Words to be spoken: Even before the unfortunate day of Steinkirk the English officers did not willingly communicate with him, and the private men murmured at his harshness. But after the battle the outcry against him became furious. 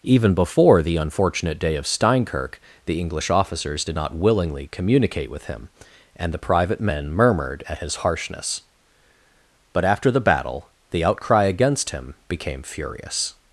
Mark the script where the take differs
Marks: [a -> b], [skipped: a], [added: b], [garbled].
Even before the unfortunate day of Steinkirk the English officers did not willingly communicate with him, and the private men murmured at his harshness. But after the battle the outcry against him became furious.